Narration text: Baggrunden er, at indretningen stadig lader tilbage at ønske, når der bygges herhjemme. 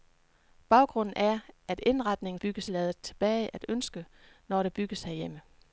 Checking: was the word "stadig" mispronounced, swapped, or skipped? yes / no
yes